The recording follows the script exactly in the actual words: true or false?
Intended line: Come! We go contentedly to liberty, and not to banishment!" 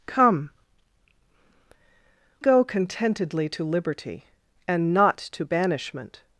false